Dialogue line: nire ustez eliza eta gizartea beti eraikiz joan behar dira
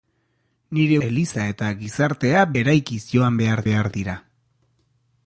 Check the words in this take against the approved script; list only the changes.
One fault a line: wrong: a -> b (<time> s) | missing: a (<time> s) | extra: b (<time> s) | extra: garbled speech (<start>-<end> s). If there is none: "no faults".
missing: ustez (1.0 s)
missing: beti (2.5 s)
extra: behar (3.7 s)